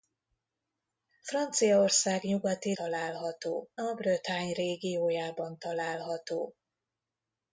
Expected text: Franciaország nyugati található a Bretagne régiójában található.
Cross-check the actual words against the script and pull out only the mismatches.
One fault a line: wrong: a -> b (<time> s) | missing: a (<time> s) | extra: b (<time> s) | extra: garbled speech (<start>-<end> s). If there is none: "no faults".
no faults